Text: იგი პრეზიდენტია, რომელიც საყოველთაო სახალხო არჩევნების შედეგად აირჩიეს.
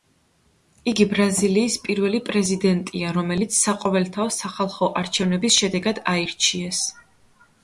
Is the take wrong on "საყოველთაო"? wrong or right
right